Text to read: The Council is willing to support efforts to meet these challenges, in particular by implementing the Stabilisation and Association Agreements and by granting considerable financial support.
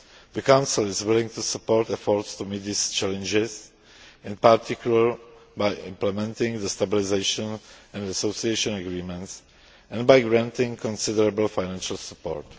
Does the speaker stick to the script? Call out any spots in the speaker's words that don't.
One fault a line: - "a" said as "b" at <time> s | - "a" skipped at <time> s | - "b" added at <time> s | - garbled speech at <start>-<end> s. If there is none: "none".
none